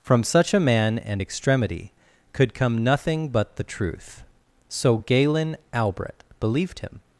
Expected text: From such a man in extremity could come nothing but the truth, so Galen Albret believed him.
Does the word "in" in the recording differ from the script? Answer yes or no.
yes